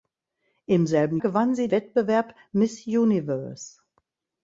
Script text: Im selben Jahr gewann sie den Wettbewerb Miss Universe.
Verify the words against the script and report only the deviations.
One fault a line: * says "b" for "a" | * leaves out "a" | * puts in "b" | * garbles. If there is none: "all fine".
* leaves out "Jahr"
* leaves out "den"